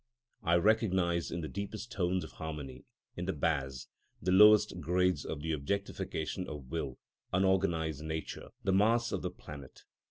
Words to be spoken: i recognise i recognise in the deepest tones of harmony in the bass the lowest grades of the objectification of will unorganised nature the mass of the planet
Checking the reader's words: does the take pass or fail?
fail